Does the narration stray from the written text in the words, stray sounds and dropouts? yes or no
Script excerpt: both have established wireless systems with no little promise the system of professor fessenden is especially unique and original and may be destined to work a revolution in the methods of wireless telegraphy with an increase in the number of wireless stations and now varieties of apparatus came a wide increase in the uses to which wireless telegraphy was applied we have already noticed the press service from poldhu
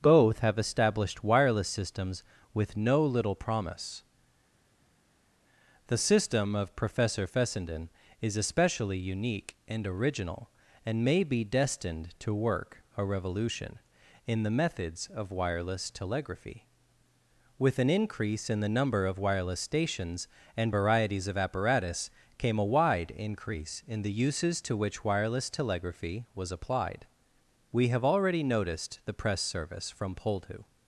yes